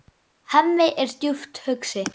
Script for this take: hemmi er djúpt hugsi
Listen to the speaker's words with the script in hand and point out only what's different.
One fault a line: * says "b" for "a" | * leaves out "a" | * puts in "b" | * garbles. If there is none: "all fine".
all fine